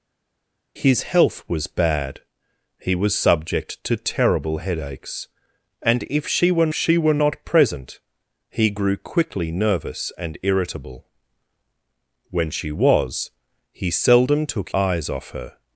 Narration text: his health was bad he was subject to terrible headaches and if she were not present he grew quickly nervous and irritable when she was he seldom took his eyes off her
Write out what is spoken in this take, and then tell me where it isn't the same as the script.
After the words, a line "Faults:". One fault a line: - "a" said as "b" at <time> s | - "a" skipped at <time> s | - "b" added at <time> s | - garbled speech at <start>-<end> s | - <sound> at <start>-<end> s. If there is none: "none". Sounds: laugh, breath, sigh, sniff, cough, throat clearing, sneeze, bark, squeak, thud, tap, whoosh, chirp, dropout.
his health was bad he was subject to terrible headaches and if she were she were not present he grew quickly nervous and irritable when she was he seldom took eyes off her
Faults:
- "she were" added at 6.7 s
- "his" skipped at 14.7 s